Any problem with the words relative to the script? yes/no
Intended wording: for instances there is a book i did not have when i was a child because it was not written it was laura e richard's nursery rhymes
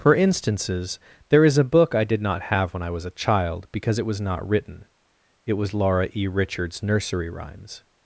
no